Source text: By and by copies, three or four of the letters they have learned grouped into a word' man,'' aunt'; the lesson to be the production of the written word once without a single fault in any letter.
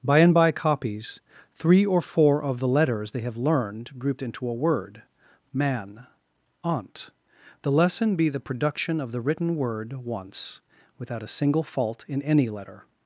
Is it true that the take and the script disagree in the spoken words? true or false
true